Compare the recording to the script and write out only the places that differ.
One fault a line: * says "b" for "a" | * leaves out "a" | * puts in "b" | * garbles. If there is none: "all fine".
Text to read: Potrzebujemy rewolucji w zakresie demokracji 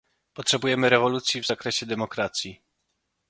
all fine